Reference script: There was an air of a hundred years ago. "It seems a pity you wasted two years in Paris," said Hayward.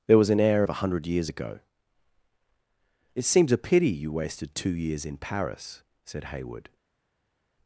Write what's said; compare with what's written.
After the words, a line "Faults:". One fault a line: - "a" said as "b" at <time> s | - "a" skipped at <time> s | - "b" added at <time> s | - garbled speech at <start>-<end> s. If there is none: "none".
There was an air of a hundred years ago. "It seems a pity you wasted two years in Paris," said Hayward.
Faults:
none